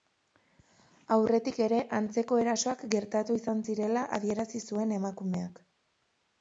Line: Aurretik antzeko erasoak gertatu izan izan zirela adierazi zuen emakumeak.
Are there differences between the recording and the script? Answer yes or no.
yes